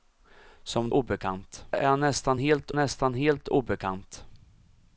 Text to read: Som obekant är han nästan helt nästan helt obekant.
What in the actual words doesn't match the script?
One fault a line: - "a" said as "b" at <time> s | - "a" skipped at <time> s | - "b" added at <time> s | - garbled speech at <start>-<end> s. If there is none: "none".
none